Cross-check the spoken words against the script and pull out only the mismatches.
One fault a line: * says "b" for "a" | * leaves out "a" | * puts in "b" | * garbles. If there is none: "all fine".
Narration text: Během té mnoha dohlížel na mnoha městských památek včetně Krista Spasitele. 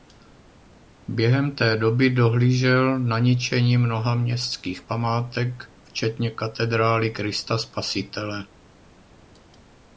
* says "doby" for "mnoha"
* puts in "ničení"
* puts in "katedrály"